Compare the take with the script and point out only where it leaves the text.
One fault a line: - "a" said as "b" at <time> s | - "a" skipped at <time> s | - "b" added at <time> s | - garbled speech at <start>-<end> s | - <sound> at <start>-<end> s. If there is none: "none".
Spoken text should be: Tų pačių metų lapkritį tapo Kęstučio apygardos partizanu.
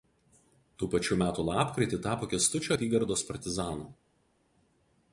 none